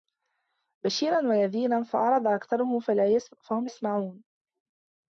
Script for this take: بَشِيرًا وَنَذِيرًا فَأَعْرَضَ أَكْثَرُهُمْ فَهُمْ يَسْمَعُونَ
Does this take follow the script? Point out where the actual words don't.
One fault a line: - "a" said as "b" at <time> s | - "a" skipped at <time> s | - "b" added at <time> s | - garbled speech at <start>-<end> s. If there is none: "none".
none